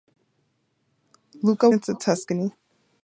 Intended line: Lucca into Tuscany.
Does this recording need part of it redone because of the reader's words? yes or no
no